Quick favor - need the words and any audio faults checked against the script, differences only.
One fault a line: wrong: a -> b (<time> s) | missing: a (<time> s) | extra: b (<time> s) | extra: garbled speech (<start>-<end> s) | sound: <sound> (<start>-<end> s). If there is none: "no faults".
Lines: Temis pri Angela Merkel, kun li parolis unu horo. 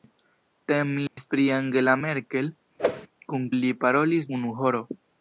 sound: dropout (1.1-1.2 s)
sound: whoosh (2.8-3.1 s)